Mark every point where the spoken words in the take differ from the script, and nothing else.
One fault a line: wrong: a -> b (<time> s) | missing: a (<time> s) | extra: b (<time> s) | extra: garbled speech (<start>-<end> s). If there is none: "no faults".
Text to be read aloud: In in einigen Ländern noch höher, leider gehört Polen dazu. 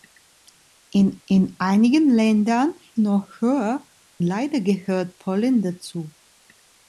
no faults